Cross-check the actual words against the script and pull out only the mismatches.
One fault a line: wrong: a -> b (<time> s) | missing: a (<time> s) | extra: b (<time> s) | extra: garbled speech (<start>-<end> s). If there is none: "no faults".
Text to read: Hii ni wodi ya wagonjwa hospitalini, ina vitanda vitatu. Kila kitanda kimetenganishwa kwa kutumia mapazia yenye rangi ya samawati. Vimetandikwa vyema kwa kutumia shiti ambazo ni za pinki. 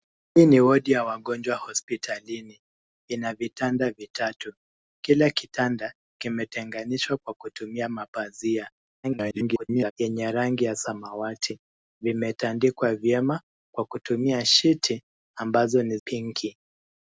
extra: garbled speech (9.0-9.9 s)
missing: za (16.0 s)